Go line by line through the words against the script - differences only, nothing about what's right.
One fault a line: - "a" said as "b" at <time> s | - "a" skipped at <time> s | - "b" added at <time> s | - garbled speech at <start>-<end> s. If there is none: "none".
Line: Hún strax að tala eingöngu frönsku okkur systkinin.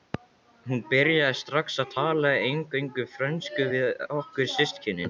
- "byrjaði" added at 0.9 s
- "við" added at 3.7 s